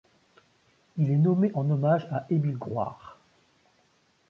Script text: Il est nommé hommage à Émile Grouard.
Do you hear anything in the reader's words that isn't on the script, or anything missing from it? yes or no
yes